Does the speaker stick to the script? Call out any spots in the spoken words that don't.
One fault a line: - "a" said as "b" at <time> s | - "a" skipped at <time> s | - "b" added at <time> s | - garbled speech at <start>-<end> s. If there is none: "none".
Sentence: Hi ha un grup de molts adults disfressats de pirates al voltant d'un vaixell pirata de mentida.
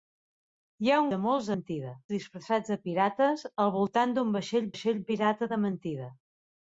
- "grup" skipped at 1.1 s
- "adults" said as "mentida" at 1.5 s
- "vaixell" added at 4.7 s